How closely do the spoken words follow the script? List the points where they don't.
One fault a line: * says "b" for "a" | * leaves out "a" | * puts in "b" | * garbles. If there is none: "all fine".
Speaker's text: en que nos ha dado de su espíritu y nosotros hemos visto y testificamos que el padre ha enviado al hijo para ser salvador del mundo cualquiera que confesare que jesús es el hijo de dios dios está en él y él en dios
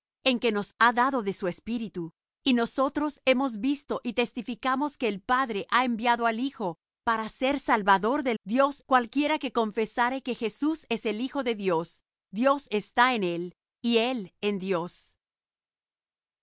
* says "dios" for "mundo"